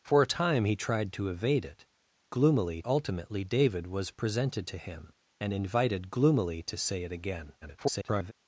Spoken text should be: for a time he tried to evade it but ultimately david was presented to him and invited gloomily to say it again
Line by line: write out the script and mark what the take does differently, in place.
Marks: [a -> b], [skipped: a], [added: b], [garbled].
for a time he tried to evade it [but -> gloomily] ultimately david was presented to him and invited gloomily to say it again [garbled]